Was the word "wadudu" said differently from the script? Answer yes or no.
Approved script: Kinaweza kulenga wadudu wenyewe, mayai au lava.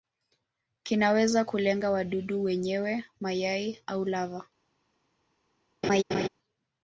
no